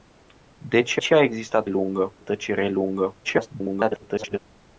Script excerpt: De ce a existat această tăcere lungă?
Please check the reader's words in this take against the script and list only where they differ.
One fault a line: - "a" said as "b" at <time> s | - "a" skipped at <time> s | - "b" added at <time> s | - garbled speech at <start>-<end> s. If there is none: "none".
- "ce" added at 1.0 s
- "această" said as "lungă" at 1.7 s
- garbled speech at 3.2-4.4 s